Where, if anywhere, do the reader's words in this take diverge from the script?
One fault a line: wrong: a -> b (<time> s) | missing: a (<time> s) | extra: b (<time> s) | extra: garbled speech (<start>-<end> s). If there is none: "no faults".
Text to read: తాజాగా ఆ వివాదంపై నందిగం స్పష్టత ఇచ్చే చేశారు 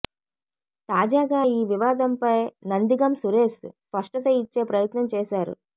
wrong: ఆ -> ఈ (1.5 s)
extra: సురేష్ (3.2 s)
extra: ప్రయత్నం (4.6 s)